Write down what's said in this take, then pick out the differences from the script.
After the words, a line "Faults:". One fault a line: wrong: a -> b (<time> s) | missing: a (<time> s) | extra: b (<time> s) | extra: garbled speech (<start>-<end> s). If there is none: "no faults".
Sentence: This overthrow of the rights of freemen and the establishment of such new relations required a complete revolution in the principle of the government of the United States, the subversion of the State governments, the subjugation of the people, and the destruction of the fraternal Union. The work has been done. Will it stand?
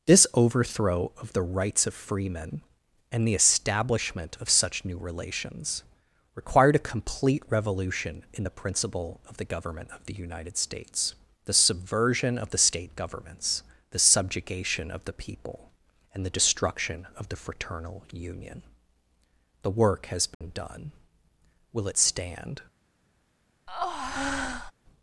This overthrow of the rights of freemen and the establishment of such new relations required a complete revolution in the principle of the government of the United States, the subversion of the State governments, the subjugation of the people, and the destruction of the fraternal Union. The work has been done. Will it stand?
Faults:
no faults